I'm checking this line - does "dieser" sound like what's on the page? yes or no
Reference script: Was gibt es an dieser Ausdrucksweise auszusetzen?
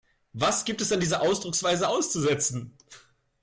yes